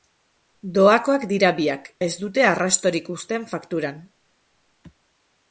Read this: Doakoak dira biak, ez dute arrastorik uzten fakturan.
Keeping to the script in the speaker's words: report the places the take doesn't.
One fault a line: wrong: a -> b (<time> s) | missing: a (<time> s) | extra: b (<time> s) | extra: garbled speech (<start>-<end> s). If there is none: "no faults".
no faults